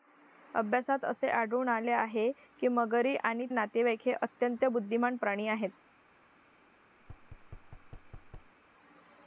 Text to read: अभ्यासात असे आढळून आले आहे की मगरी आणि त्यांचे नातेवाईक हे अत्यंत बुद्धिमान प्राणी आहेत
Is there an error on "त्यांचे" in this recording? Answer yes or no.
yes